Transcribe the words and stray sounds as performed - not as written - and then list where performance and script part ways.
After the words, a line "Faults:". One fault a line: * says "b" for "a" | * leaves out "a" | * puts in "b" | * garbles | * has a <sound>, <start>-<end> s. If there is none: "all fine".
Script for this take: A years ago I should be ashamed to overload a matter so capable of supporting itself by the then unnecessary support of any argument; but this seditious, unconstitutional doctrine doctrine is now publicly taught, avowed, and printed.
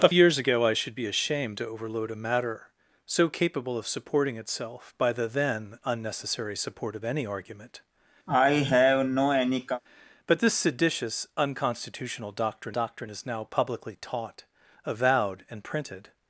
A years ago I should be ashamed to overload a matter so capable of supporting itself by the then unnecessary support of any argument; but this seditious, unconstitutional doctrine doctrine is now publicly taught, avowed, and printed.
Faults:
* has a cough, 8.3-9.8 s